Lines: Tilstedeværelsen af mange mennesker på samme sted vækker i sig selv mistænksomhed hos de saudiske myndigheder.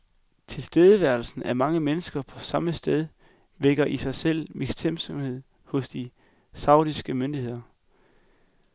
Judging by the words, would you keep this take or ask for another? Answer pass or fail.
pass